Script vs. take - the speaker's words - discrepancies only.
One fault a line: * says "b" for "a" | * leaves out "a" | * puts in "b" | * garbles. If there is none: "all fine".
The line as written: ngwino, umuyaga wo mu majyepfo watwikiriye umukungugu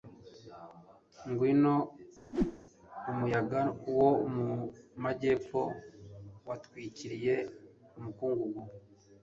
all fine